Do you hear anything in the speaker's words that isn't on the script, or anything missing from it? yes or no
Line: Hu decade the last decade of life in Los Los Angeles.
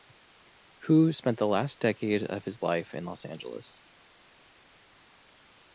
yes